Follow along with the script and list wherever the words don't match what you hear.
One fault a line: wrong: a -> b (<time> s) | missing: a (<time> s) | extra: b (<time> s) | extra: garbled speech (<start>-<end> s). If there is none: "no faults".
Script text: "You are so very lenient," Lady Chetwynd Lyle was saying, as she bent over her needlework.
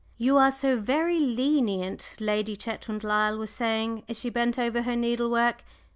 no faults